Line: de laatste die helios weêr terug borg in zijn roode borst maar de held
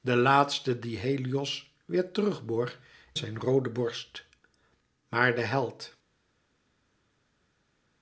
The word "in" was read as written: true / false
false